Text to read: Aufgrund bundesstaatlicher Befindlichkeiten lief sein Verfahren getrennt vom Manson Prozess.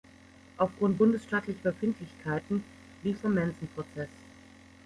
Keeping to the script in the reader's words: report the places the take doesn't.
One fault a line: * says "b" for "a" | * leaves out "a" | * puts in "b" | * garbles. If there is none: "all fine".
* leaves out "sein Verfahren getrennt"